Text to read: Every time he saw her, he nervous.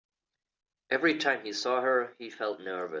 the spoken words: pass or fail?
fail